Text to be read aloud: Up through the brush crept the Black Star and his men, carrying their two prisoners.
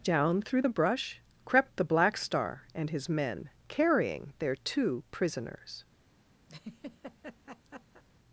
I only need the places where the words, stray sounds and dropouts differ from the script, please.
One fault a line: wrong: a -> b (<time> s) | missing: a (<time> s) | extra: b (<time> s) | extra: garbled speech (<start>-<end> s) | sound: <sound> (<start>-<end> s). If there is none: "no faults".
wrong: Up -> Down (0.0 s)
sound: laugh (6.5-8.0 s)